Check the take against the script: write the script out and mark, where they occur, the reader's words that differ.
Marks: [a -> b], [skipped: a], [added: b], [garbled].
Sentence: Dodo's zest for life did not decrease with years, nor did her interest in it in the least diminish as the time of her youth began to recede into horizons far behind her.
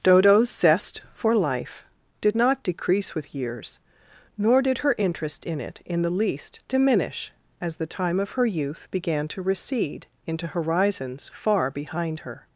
Dodo's zest for life did not decrease with years, nor did her interest in it in the least diminish as the time of her youth began to recede into horizons far behind her.